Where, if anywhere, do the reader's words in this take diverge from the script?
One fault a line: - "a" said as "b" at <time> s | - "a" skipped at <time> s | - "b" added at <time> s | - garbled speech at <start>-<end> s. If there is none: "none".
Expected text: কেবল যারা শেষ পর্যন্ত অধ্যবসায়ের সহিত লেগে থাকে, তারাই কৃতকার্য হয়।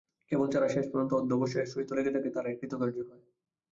none